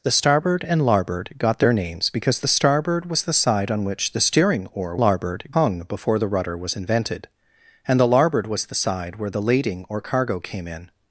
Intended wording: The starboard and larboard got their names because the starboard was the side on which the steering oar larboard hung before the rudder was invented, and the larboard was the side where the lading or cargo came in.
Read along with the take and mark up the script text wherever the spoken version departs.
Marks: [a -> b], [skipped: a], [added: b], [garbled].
The starboard and larboard got their names because the starboard was the side on which the steering oar larboard hung before the rudder was invented, and the larboard was the side where the lading or cargo came in.